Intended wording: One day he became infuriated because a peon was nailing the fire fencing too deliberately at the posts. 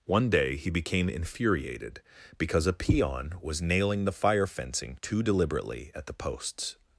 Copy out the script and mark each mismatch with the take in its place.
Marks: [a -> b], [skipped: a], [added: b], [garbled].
One day he became infuriated because a peon was nailing the fire fencing too deliberately at the posts.